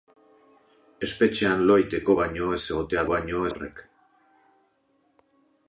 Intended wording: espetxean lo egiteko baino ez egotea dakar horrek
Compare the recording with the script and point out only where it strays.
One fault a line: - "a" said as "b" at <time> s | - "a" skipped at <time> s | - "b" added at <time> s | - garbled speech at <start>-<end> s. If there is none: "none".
- "dakar" said as "baino" at 3.1 s